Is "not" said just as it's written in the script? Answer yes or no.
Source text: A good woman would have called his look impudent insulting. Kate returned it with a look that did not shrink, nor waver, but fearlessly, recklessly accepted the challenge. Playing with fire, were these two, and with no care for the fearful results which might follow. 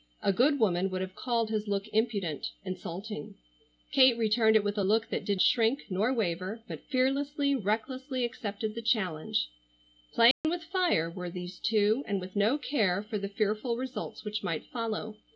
no